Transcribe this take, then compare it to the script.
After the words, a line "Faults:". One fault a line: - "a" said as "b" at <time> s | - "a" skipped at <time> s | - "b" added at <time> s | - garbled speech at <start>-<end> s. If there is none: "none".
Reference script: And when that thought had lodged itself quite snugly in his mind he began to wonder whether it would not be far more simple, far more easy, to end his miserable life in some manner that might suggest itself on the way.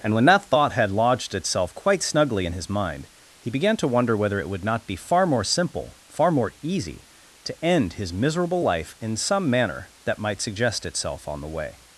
And when that thought had lodged itself quite snugly in his mind he began to wonder whether it would not be far more simple, far more easy, to end his miserable life in some manner that might suggest itself on the way.
Faults:
none